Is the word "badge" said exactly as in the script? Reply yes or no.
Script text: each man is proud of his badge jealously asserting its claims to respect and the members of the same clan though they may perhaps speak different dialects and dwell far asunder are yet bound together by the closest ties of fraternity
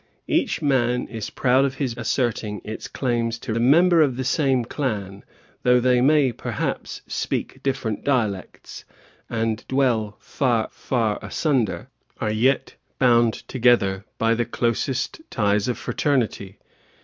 no